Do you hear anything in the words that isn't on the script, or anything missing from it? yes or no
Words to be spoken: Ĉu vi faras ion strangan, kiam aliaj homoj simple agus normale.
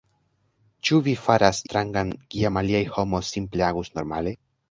yes